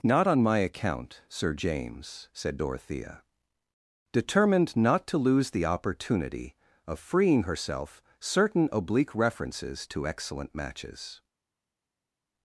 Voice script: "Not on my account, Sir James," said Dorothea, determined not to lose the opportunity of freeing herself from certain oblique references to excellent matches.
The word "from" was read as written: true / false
false